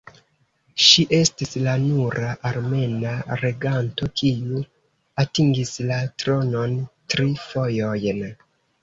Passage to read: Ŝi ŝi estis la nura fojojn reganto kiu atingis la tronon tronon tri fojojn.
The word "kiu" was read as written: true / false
true